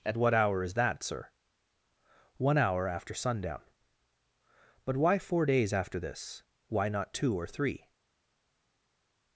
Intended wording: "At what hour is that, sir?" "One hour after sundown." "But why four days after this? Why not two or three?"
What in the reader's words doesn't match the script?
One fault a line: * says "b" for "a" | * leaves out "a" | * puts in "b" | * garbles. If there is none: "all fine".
all fine